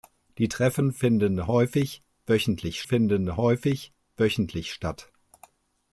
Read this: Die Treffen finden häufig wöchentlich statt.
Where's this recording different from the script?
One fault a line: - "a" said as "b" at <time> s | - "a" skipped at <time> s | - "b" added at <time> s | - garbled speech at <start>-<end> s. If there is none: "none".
- "finden häufig wöchentlich" added at 2.8 s